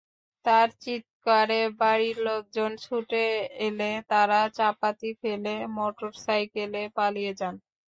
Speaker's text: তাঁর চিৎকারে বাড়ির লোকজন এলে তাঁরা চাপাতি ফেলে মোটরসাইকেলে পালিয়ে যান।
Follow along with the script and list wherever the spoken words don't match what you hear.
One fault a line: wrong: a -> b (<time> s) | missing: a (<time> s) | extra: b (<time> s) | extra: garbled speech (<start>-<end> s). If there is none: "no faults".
extra: ছুটে (2.8 s)